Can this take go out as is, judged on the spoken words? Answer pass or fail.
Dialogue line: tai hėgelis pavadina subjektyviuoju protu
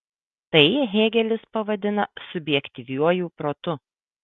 pass